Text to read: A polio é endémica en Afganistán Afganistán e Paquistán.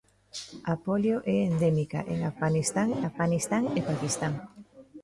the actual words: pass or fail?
pass